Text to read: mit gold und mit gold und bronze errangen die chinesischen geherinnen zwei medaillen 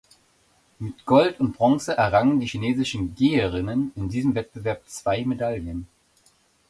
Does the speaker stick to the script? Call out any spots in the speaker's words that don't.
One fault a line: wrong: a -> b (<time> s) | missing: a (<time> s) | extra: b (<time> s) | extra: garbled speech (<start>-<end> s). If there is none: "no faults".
missing: mit gold und (1.6 s)
extra: in diesem wettbewerb (3.9 s)